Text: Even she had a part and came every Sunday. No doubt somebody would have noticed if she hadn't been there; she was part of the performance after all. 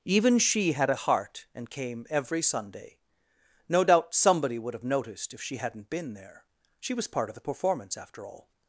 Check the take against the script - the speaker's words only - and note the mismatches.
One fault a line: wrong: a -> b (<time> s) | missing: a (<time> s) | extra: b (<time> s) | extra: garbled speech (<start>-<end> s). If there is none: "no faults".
wrong: part -> heart (1.0 s)